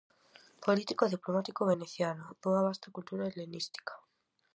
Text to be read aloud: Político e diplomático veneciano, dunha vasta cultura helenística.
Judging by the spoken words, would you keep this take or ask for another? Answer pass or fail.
pass